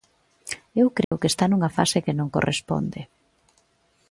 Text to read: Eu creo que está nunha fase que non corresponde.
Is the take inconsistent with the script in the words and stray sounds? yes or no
yes